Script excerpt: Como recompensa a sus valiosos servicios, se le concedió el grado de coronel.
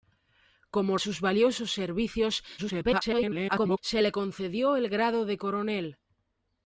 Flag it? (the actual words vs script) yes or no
yes